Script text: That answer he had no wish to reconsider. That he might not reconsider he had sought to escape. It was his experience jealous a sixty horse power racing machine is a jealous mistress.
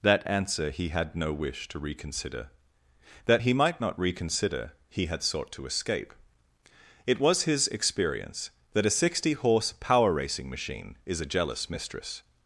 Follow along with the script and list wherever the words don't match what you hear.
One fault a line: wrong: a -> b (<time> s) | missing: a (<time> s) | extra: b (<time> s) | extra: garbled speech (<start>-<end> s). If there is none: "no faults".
wrong: jealous -> that (8.7 s)